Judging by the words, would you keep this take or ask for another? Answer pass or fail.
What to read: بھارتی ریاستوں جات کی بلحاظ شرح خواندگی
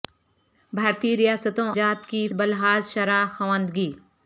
pass